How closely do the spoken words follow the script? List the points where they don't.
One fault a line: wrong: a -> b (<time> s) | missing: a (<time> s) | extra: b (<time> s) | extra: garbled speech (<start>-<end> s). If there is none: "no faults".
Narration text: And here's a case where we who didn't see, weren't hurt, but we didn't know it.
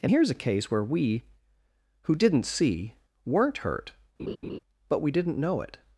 no faults